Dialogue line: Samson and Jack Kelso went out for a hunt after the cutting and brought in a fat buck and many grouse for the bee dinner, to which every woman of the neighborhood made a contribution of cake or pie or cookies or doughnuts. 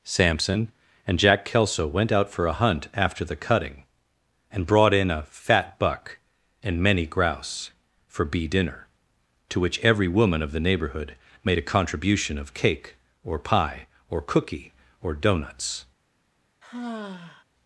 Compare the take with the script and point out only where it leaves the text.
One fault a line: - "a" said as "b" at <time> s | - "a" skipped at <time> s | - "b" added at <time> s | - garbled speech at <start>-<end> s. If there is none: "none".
- "the" skipped at 8.2 s
- "cookies" said as "cookie" at 14.2 s